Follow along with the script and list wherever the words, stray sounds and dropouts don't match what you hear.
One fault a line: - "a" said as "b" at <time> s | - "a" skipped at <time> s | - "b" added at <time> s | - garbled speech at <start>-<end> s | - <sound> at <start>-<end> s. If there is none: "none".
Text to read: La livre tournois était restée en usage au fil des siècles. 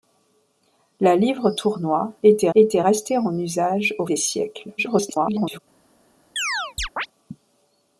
- "était" added at 2.5 s
- "fil" skipped at 4.1 s
- garbled speech at 4.8-5.6 s
- chirp at 6.4-7.1 s